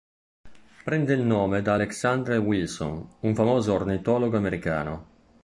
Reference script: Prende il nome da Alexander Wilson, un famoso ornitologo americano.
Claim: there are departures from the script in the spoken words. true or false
false